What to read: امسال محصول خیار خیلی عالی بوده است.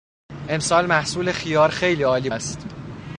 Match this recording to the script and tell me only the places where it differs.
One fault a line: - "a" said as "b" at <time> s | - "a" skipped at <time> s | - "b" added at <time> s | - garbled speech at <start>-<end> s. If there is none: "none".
- "بوده" skipped at 2.3 s